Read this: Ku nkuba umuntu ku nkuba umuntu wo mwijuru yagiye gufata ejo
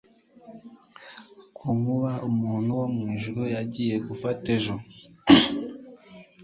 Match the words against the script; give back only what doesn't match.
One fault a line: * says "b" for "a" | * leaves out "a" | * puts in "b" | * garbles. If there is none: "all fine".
* leaves out "ku nkuba umuntu"